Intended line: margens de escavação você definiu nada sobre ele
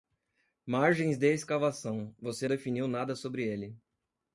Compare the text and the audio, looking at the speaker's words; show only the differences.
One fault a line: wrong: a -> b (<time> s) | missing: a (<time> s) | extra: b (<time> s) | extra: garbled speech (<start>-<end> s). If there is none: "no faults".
no faults